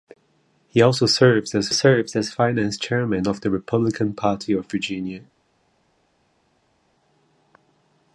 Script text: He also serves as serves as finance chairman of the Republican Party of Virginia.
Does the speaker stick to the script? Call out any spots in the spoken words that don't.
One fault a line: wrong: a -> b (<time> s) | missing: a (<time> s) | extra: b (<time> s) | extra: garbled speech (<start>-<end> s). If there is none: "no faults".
no faults